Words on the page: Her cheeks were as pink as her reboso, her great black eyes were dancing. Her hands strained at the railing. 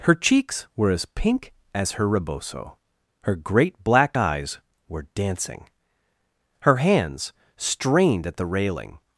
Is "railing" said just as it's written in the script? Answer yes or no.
yes